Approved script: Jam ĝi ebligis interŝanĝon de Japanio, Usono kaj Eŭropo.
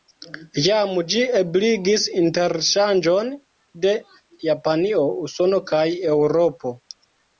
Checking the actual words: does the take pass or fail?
pass